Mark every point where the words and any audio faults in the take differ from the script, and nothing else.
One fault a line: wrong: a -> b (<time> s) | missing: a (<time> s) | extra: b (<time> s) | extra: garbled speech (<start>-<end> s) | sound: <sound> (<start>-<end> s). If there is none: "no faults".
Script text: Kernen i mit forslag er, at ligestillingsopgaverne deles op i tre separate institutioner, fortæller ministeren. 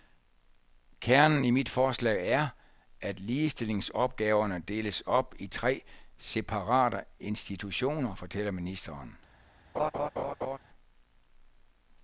sound: laugh (9.7-10.6 s)